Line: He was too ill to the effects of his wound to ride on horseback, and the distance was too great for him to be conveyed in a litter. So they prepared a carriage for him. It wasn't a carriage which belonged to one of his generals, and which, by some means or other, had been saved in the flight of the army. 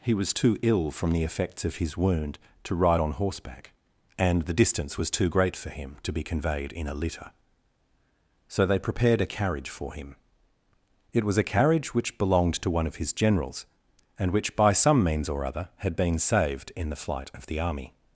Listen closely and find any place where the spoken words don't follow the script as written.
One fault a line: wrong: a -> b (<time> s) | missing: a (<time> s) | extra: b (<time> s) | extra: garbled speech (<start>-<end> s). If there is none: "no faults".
wrong: to -> from (0.9 s)
wrong: wasn't -> was (11.2 s)